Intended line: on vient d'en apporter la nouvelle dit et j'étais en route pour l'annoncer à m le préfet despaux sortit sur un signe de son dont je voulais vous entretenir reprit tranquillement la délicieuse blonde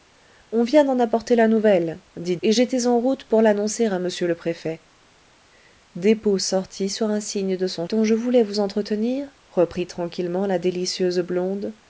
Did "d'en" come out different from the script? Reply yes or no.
no